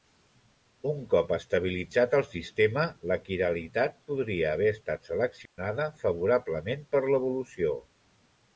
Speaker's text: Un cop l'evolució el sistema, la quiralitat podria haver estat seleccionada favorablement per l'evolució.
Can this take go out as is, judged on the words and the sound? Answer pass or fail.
fail